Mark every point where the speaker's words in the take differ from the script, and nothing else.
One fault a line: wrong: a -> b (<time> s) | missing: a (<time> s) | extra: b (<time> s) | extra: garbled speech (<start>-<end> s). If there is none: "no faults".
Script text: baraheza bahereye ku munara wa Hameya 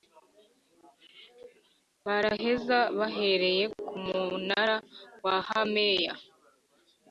no faults